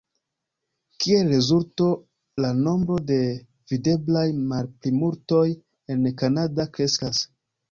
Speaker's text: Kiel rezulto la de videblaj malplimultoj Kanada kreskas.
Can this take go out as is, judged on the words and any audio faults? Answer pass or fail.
fail